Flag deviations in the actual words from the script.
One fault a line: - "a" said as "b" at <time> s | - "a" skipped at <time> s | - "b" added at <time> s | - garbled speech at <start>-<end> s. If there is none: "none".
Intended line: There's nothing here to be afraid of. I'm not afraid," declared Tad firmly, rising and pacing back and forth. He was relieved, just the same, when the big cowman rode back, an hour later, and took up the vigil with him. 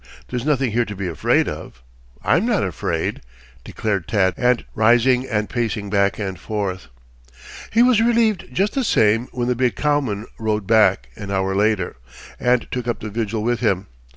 - "firmly" said as "and" at 4.4 s